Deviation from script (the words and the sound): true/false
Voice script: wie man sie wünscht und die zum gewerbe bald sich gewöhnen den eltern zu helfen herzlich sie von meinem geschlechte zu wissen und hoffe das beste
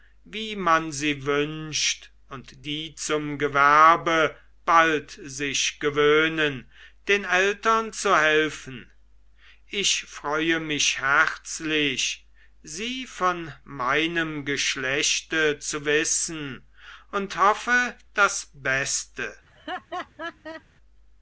true